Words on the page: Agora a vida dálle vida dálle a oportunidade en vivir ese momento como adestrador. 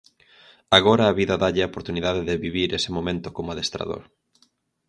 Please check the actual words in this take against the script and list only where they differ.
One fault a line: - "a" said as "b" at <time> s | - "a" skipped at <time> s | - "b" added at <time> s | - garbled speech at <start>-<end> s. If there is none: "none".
- "vida dálle" skipped at 1.6 s
- "en" said as "de" at 2.3 s